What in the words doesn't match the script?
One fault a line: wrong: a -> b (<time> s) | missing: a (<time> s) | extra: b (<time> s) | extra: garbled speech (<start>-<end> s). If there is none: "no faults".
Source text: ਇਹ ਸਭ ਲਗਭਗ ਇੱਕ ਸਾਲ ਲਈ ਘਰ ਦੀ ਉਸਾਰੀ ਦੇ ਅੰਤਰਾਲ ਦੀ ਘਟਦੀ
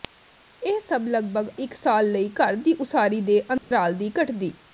no faults